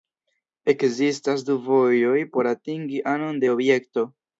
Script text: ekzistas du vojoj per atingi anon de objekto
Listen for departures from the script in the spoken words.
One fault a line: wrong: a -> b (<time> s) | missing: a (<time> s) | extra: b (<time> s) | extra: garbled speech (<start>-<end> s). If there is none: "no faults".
wrong: per -> por (2.4 s)